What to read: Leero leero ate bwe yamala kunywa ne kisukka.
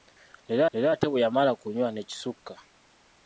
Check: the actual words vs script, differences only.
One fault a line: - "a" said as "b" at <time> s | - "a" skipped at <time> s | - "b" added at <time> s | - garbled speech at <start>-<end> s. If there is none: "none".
none